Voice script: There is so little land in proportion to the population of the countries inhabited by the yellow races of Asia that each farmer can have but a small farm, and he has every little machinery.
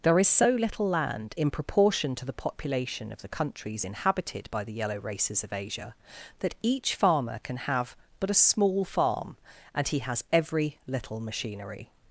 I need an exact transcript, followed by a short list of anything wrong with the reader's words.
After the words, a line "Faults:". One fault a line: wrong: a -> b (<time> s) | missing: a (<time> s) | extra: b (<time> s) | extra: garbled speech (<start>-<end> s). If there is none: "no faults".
There is so little land in proportion to the population of the countries inhabited by the yellow races of Asia that each farmer can have but a small farm, and he has every little machinery.
Faults:
no faults